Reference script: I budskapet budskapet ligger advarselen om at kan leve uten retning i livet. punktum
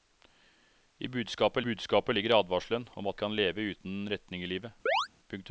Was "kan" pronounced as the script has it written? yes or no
yes